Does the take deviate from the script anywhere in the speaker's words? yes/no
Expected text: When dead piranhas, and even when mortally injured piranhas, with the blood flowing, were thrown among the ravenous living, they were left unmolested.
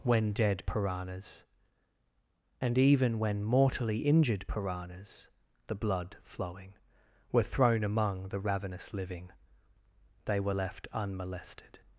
yes